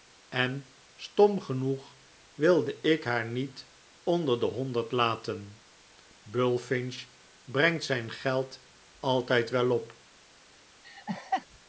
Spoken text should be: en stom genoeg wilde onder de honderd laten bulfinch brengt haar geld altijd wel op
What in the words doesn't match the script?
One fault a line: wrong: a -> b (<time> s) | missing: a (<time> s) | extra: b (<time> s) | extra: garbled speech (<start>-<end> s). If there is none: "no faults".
extra: ik haar niet (2.8 s)
wrong: haar -> zijn (7.8 s)